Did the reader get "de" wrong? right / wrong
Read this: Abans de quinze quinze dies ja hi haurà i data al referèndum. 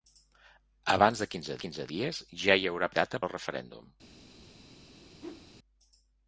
right